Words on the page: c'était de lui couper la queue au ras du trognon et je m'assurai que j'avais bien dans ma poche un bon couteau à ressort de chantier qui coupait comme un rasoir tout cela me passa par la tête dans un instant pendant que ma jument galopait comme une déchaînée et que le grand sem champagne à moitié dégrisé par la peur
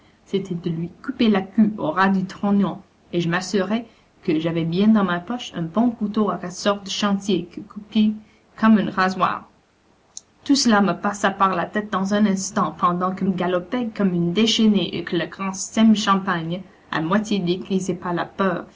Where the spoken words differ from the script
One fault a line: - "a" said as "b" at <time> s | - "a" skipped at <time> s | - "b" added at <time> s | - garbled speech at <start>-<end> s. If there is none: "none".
- "ma jument" skipped at 13.2 s